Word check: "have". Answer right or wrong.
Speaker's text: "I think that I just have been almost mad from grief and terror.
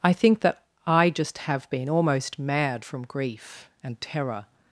right